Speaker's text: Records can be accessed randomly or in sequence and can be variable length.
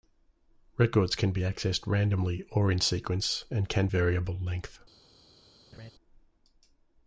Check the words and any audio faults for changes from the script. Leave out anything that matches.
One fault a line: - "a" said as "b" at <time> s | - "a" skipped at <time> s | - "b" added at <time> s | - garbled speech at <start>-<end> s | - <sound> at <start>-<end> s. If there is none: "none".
- "be" skipped at 3.9 s
- laugh at 5.7-5.9 s